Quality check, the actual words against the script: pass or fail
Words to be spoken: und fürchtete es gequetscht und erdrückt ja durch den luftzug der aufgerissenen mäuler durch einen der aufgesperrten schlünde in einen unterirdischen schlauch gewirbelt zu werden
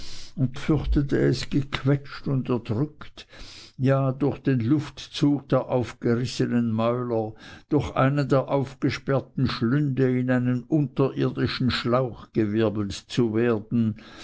pass